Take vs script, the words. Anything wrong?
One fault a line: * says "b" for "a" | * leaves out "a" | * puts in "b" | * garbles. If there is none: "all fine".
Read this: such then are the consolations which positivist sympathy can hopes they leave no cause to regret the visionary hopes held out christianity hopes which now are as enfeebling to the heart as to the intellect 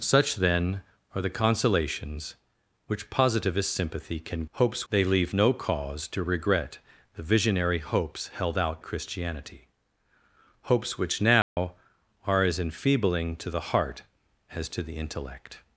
all fine